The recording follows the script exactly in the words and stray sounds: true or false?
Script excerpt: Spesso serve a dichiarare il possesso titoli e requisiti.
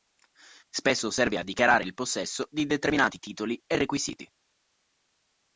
false